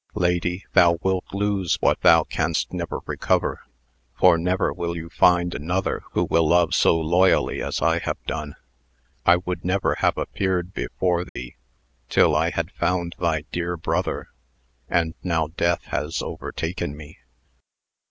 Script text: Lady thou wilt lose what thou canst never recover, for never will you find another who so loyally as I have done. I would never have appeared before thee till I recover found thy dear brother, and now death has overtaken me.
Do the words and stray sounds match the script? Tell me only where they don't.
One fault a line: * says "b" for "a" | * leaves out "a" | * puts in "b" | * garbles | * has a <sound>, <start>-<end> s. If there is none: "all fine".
* puts in "will love"
* has a dropout, 11.3-11.4 s
* says "had" for "recover"